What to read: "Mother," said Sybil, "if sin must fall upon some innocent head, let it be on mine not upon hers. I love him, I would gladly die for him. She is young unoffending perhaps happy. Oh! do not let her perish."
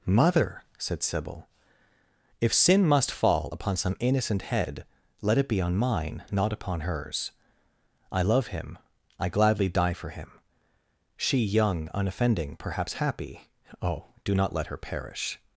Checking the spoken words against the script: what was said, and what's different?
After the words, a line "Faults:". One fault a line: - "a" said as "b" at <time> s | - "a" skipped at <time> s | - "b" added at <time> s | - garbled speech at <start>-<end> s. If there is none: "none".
"Mother," said Sybil, "if sin must fall upon some innocent head, let it be on mine not upon hers. I love him, I gladly die for him. She young unoffending perhaps happy. Oh! do not let her perish."
Faults:
- "would" skipped at 9.3 s
- "is" skipped at 11.4 s